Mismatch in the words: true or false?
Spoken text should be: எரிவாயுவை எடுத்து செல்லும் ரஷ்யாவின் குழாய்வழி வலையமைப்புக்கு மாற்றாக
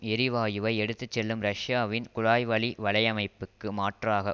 false